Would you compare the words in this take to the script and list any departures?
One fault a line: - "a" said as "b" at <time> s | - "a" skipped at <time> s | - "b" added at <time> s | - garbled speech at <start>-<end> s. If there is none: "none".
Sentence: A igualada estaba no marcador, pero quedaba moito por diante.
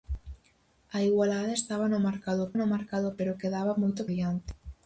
- "no marcador" added at 2.6 s
- "por" skipped at 4.0 s